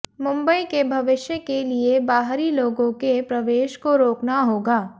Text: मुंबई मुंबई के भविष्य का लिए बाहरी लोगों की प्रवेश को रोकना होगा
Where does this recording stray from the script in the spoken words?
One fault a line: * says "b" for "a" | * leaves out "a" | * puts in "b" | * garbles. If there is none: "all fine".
* leaves out "मुंबई"
* says "के" for "का"
* says "के" for "की"